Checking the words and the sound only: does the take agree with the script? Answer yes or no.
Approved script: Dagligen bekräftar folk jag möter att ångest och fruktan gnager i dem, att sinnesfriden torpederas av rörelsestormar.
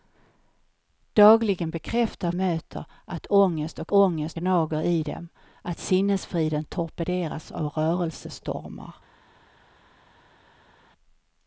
no